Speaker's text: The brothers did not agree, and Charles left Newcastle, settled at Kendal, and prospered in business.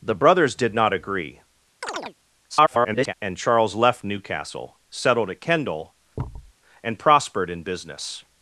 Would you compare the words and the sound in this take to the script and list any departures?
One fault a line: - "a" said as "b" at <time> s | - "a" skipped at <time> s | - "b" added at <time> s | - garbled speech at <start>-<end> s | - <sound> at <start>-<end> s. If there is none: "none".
- chirp at 1.8-2.2 s
- garbled speech at 2.5-3.1 s
- thud at 6.2-6.5 s